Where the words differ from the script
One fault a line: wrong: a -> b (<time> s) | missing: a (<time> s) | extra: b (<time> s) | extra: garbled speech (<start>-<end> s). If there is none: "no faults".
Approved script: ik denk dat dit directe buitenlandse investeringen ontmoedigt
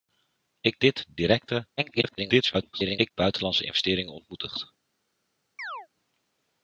missing: denk dat (0.8 s)
extra: garbled speech (1.8-3.1 s)